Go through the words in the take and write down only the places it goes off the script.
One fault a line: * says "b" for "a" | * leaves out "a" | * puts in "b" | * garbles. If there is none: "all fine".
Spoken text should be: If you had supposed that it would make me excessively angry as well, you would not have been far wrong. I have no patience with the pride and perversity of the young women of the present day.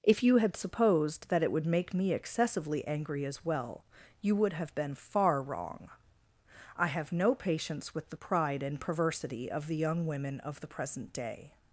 * leaves out "not"